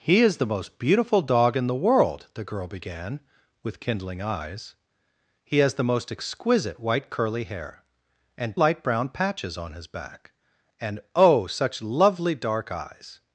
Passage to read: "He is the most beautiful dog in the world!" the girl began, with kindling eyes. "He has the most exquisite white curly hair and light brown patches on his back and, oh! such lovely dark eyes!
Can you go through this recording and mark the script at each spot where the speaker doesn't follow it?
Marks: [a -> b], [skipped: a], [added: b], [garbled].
"He is the most beautiful dog in the world!" the girl began, with kindling eyes. "He has the most exquisite white curly hair and light brown patches on his back and, oh! such lovely dark eyes!